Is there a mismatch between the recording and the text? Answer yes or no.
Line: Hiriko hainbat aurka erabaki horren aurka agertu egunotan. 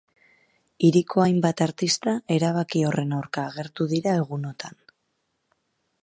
yes